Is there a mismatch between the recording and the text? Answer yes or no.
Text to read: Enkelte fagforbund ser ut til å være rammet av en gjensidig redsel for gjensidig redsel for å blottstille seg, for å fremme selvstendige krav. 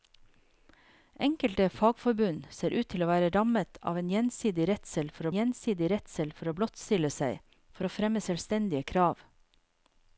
no